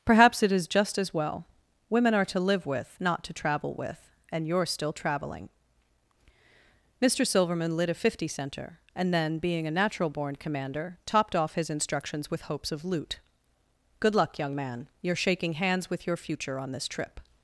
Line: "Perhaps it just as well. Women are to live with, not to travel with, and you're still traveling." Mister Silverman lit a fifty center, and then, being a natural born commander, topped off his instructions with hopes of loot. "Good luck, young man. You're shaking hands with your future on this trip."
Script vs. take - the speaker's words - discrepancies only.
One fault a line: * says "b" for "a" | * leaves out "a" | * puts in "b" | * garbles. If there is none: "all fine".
* puts in "is"